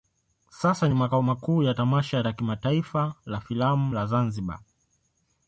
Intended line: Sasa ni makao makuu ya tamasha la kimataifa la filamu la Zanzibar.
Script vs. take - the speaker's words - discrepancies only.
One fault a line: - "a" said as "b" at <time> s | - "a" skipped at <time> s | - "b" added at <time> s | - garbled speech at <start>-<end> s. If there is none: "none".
none